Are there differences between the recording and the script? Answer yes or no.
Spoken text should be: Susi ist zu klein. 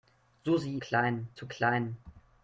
yes